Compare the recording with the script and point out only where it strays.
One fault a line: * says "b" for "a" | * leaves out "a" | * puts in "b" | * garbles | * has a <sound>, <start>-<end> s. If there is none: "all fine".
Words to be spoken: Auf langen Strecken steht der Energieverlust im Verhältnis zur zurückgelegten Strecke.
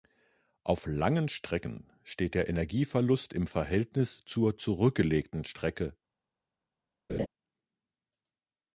* has a laugh, 7.1-7.3 s